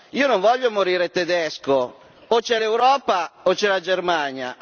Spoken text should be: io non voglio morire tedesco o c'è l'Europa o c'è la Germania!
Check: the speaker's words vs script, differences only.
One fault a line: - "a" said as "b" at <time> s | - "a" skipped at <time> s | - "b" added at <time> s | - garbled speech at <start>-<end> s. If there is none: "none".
none